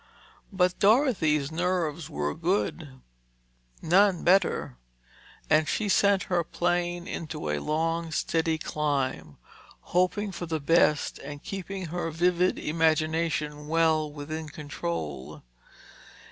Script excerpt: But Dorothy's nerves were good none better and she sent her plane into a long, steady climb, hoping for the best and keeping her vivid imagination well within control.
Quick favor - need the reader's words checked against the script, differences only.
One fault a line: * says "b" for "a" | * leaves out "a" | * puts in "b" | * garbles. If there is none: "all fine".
all fine